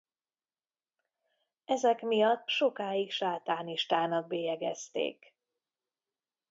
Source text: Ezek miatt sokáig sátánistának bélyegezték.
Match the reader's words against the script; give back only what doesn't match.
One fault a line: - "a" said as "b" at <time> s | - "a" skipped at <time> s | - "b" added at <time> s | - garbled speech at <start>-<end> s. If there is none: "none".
none